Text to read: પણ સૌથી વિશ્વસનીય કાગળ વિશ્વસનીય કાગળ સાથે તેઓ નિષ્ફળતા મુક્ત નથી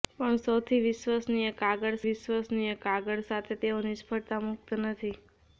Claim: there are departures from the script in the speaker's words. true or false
false